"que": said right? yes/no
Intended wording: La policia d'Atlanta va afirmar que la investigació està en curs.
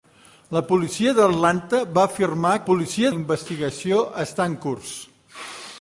no